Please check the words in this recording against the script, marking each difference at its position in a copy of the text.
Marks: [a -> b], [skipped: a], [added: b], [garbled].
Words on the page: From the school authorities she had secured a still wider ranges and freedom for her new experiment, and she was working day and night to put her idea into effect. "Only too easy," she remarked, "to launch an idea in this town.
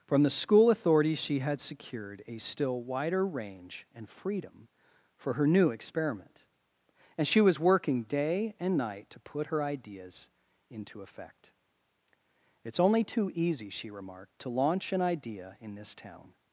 From the school authorities she had secured a still wider [ranges -> range] and freedom for her new experiment, and she was working day and night to put her [idea -> ideas] into effect. [added: It's] "Only too easy," she remarked, "to launch an idea in this town.